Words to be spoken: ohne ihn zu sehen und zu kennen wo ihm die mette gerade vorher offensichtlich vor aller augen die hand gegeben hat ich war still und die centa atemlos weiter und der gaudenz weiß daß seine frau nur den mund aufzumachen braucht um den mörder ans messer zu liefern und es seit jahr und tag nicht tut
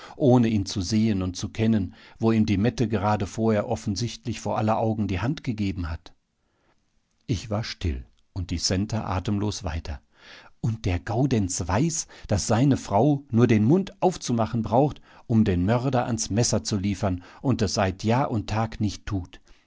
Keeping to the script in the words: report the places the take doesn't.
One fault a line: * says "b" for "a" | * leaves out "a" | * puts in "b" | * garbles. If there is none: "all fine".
all fine